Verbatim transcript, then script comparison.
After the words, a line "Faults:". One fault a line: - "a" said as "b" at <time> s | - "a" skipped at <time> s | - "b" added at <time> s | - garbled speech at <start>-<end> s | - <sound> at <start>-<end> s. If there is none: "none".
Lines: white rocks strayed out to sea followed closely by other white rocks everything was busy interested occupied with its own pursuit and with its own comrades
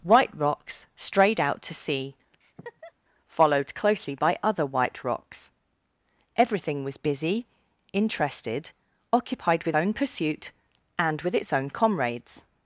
white rocks strayed out to sea followed closely by other white rocks everything was busy interested occupied with own pursuit and with its own comrades
Faults:
- laugh at 2.4-2.9 s
- "its" skipped at 9.7 s